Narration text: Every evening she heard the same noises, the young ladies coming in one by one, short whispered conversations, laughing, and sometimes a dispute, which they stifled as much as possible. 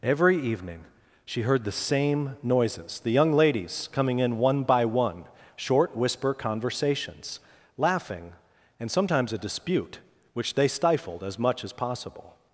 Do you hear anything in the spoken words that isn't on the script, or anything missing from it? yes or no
yes